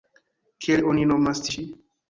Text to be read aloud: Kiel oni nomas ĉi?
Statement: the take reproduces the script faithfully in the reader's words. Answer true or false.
true